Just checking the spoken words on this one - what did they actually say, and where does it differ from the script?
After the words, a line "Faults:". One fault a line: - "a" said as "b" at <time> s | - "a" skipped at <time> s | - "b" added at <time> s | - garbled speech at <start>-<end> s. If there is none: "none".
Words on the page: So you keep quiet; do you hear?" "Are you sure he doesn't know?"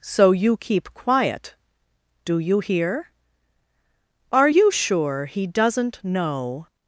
So you keep quiet; do you hear?" "Are you sure he doesn't know?"
Faults:
none